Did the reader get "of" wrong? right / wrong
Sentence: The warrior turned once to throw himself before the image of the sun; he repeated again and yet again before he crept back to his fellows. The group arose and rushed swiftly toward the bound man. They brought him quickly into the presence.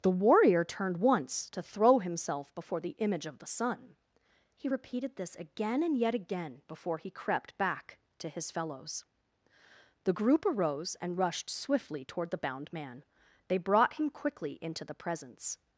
right